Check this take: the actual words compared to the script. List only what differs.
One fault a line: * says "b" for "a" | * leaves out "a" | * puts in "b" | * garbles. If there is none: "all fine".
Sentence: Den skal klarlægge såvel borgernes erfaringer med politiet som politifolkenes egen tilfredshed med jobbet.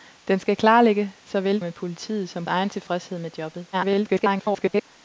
* leaves out "borgernes erfaringer"
* leaves out "politifolkenes"
* garbles